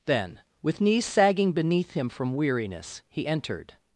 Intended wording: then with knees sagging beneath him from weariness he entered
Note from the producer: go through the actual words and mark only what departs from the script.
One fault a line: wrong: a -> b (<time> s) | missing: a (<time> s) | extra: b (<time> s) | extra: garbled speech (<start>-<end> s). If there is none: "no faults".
no faults